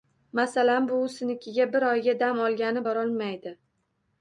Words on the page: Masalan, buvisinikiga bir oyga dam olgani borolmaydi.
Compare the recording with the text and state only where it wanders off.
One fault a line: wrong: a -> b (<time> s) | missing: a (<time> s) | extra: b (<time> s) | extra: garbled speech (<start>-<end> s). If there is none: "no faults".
no faults